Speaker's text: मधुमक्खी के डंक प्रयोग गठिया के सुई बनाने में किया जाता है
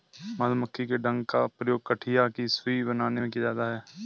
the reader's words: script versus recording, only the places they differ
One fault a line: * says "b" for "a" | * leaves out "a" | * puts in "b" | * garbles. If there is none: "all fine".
* puts in "का"
* says "की" for "के"